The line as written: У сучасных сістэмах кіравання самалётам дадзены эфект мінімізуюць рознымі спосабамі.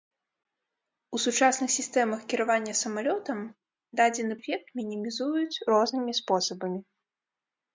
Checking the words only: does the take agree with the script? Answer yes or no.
yes